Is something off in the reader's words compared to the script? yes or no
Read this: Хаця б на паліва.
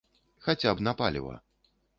no